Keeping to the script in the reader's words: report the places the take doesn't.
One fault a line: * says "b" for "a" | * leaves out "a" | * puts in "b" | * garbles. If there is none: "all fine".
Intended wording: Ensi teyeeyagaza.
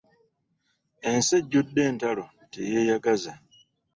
* puts in "ejjudde entalo"